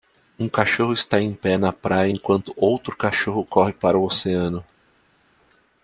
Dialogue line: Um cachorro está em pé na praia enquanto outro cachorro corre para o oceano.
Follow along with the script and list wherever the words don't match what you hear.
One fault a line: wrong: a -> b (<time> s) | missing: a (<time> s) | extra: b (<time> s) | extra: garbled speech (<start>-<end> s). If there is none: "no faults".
no faults